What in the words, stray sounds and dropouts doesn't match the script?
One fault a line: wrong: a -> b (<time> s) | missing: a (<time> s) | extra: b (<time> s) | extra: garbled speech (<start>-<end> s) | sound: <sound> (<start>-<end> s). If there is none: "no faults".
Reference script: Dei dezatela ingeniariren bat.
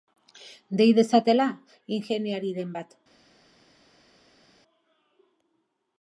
no faults